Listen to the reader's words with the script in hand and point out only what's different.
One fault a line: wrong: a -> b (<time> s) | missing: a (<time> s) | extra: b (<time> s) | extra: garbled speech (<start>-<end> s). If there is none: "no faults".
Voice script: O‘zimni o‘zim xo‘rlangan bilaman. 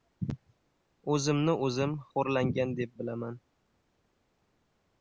extra: deb (2.8 s)